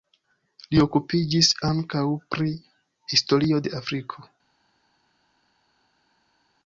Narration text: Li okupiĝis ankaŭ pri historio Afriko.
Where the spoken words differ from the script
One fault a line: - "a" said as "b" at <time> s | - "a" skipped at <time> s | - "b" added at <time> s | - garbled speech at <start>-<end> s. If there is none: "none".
- "de" added at 3.7 s